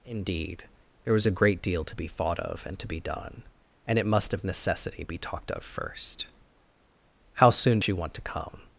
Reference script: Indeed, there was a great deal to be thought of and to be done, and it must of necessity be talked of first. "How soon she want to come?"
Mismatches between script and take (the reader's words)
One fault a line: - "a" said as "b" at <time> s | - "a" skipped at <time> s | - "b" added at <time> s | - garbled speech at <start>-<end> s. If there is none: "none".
none